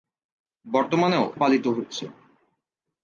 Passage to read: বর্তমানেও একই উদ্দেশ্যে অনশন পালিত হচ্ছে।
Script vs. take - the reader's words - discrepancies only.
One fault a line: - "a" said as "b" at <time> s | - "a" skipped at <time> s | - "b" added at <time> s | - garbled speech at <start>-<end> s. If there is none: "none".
- "একই উদ্দেশ্যে অনশন" skipped at 1.2 s